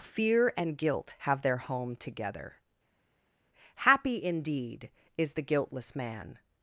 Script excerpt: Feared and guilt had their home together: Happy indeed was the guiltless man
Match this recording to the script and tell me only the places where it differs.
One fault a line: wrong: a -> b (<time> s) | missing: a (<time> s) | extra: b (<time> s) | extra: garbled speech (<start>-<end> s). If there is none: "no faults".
wrong: Feared -> Fear (0.0 s)
wrong: had -> have (1.2 s)
wrong: was -> is (5.2 s)